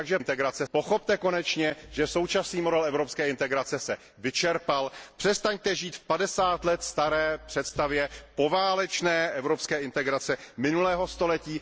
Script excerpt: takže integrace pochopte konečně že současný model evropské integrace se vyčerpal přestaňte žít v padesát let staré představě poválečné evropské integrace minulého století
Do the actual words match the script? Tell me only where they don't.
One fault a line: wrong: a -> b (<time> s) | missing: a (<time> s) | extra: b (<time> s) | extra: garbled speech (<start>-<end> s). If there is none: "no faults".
no faults